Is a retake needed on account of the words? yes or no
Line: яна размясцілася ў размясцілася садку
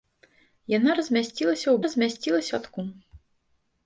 no